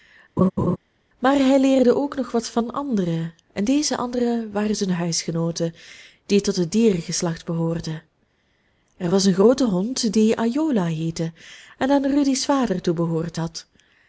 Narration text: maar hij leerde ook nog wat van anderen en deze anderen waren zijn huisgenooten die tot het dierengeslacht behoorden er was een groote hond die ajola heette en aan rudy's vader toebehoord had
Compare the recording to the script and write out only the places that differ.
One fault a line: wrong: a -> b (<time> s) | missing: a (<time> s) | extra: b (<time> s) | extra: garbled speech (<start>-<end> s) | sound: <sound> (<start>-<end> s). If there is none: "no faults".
sound: laugh (0.4-0.8 s)